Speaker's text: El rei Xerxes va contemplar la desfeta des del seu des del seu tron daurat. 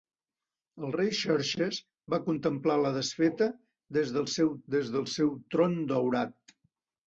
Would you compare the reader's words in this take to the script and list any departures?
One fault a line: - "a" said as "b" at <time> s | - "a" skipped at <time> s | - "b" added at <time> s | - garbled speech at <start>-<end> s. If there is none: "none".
none